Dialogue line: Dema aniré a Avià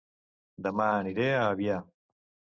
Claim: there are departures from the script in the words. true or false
false